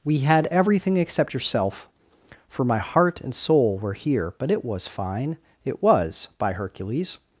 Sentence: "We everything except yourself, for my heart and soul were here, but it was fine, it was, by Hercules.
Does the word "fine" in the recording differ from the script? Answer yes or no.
no